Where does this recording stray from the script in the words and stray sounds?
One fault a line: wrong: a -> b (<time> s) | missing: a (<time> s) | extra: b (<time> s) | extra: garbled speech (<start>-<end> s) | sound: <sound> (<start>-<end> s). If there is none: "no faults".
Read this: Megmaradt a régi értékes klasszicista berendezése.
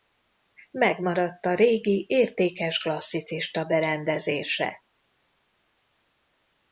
no faults